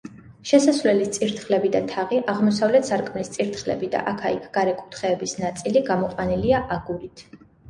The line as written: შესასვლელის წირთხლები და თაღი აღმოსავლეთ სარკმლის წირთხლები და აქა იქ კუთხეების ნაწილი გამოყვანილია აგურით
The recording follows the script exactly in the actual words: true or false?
false